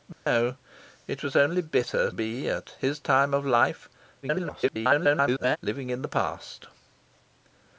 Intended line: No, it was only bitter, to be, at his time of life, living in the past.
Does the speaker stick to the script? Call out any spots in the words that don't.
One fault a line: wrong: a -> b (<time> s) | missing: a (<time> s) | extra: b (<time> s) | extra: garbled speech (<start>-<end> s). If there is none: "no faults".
missing: to (2.1 s)
extra: garbled speech (4.2-5.6 s)